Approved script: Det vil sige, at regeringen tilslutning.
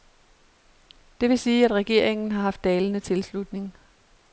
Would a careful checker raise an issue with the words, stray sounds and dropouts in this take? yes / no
yes